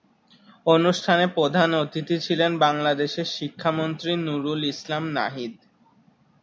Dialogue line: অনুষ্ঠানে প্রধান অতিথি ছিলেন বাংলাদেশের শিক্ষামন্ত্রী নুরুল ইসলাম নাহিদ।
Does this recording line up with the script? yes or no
yes